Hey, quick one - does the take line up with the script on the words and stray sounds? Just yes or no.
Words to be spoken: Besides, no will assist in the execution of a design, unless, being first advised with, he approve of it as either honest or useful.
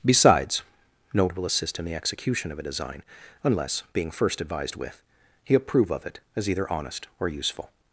yes